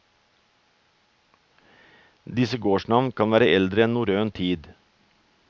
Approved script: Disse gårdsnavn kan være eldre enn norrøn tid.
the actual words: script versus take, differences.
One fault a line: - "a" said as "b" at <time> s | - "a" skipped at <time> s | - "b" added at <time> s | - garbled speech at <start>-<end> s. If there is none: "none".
none